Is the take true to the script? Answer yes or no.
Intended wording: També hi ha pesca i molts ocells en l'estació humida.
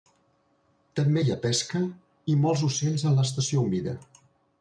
yes